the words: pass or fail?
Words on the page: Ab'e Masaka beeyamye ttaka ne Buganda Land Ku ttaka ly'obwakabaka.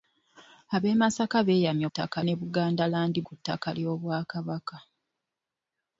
pass